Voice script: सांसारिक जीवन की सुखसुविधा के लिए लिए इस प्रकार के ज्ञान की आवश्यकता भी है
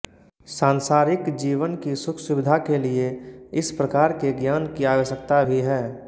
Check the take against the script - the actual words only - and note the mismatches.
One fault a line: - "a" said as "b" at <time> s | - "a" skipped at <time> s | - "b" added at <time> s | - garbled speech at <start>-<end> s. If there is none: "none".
- "लिए" skipped at 3.1 s